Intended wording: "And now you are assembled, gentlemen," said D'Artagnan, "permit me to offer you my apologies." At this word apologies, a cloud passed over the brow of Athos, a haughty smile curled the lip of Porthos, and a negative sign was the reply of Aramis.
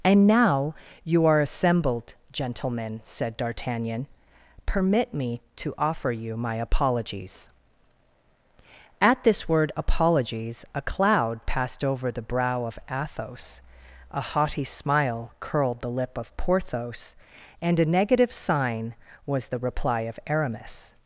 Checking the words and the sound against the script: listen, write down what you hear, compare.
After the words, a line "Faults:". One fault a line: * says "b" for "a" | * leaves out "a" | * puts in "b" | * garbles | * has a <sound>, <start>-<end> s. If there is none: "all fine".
"And now you are assembled, gentlemen," said D'Artagnan, "permit me to offer you my apologies." At this word apologies, a cloud passed over the brow of Athos, a haughty smile curled the lip of Porthos, and a negative sign was the reply of Aramis.
Faults:
all fine